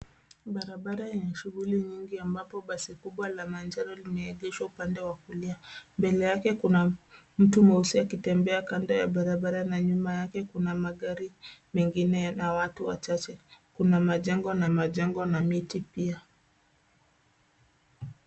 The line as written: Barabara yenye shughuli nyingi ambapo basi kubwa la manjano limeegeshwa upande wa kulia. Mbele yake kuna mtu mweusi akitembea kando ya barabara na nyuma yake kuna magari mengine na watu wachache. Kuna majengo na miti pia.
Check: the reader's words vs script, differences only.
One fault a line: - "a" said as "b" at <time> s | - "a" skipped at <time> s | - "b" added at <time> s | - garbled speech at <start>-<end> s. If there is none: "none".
- "majengo na" added at 14.7 s